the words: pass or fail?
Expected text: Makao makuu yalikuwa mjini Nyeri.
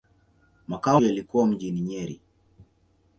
fail